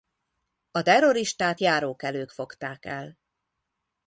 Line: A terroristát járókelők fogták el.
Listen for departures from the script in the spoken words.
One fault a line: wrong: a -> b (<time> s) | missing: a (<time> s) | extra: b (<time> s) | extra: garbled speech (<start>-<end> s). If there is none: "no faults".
no faults